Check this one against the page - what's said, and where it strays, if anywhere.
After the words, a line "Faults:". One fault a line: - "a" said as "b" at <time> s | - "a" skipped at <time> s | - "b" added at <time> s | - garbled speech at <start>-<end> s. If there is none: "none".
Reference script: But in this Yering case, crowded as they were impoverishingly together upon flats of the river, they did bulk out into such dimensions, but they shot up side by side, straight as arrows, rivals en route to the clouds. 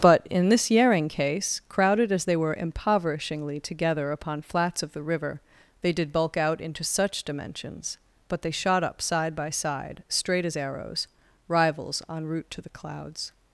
But in this Yering case, crowded as they were impoverishingly together upon flats of the river, they did bulk out into such dimensions, but they shot up side by side, straight as arrows, rivals en route to the clouds.
Faults:
none